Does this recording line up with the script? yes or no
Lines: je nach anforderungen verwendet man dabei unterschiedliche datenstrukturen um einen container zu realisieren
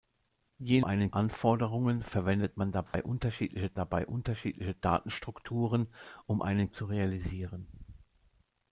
no